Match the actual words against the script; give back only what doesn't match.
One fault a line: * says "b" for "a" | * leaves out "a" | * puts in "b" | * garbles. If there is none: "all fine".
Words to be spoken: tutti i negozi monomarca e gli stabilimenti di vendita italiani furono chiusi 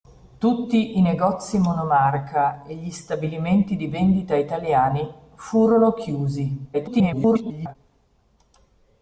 * garbles